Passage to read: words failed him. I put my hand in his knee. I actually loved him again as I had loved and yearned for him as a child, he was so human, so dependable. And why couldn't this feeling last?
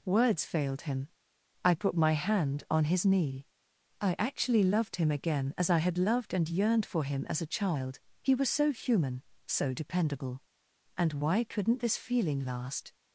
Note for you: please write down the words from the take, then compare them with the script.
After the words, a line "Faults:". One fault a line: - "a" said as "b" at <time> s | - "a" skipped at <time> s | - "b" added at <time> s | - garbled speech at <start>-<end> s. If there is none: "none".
words failed him. I put my hand on his knee. I actually loved him again as I had loved and yearned for him as a child, he was so human, so dependable. And why couldn't this feeling last?
Faults:
- "in" said as "on" at 2.7 s